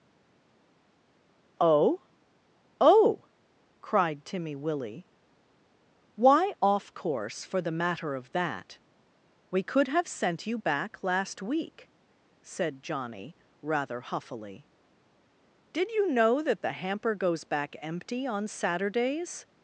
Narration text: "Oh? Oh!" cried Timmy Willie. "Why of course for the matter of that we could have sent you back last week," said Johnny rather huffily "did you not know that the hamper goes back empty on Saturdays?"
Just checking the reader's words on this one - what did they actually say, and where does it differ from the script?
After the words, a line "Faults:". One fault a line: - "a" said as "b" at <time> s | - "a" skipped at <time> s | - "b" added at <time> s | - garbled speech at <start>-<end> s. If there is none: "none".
"Oh? Oh!" cried Timmy Willie. "Why off course for the matter of that we could have sent you back last week," said Johnny rather huffily "did you know that the hamper goes back empty on Saturdays?"
Faults:
- "of" said as "off" at 6.6 s
- "not" skipped at 16.1 s